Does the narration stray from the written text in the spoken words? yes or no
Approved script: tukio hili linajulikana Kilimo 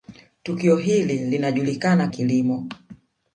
no